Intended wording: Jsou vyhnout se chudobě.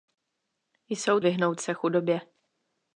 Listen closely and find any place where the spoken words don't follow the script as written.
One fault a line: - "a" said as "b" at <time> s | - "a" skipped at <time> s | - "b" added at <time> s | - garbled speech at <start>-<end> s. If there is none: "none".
none